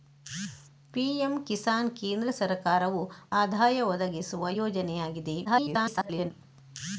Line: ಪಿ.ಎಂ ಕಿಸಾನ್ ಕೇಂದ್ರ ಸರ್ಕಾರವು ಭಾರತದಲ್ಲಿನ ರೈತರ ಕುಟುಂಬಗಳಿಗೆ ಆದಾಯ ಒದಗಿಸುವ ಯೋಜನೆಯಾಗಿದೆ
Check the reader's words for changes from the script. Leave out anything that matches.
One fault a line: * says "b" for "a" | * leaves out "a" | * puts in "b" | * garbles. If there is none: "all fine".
* leaves out "ಭಾರತದಲ್ಲಿನ ರೈತರ ಕುಟುಂಬಗಳಿಗೆ"
* garbles